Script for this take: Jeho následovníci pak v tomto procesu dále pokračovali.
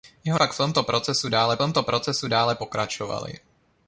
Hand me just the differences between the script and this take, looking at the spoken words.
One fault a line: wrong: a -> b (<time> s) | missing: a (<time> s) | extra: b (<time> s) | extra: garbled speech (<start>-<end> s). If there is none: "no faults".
missing: následovníci (0.4 s)
extra: tomto procesu dále (1.6 s)